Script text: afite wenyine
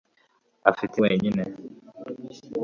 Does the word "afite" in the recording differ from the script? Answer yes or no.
no